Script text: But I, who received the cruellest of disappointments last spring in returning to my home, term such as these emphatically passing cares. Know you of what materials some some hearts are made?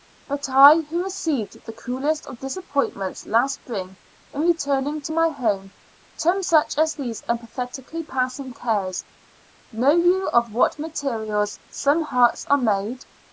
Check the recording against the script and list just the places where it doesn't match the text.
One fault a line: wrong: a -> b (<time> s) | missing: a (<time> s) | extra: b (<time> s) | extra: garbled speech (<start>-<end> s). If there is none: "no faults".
missing: some (12.0 s)